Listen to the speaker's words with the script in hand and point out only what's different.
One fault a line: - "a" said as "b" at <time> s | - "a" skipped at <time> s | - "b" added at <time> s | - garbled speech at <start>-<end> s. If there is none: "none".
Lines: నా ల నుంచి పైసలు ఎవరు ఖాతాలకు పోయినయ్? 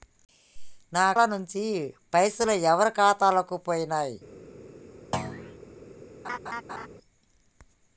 none